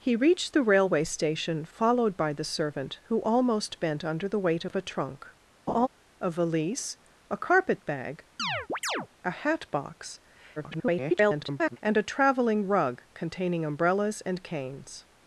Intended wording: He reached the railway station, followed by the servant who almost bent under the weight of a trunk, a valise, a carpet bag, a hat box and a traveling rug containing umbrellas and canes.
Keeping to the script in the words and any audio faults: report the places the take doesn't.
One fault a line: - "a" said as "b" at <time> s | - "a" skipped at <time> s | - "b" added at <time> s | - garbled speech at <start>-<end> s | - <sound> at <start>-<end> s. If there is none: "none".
- laugh at 5.7-5.9 s
- chirp at 8.4-9.1 s
- garbled speech at 10.6-11.8 s